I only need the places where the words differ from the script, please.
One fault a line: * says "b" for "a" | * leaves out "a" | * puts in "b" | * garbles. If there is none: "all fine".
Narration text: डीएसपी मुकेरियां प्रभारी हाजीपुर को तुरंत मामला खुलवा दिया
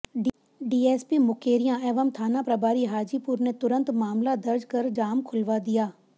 * puts in "एवं थाना"
* says "ने" for "को"
* puts in "दर्ज कर जाम"